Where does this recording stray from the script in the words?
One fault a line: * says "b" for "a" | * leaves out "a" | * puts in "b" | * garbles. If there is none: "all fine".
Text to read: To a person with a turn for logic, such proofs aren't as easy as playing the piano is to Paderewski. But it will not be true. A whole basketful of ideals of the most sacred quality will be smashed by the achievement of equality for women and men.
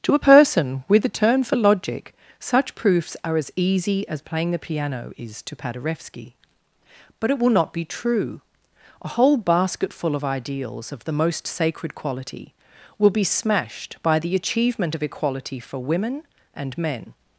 * says "are" for "aren't"